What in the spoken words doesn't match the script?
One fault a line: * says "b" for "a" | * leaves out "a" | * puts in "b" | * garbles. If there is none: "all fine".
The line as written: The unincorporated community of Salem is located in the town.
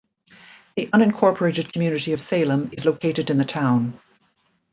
all fine